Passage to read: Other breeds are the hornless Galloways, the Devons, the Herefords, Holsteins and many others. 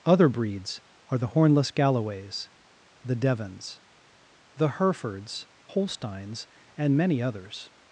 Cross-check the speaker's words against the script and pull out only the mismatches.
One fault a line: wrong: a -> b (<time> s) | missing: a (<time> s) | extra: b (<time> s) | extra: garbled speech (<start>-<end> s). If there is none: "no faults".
no faults